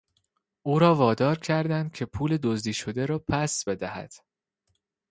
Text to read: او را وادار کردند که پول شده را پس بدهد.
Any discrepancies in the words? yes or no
yes